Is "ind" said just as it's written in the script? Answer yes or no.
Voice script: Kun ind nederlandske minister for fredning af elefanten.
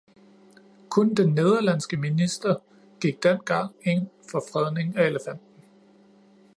no